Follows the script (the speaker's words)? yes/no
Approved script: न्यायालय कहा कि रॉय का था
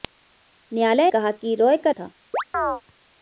yes